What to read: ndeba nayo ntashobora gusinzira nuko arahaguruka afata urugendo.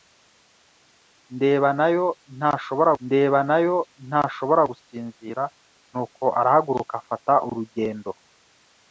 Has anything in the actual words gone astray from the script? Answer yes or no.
yes